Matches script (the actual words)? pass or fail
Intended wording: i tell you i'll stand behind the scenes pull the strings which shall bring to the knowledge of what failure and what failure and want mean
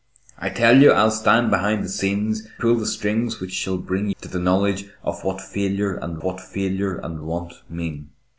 pass